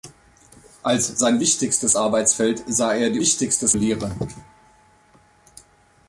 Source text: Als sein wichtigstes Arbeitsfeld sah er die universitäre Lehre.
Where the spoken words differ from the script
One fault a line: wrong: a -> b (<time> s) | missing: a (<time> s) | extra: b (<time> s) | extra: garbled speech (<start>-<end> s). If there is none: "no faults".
wrong: universitäre -> wichtigstes (3.2 s)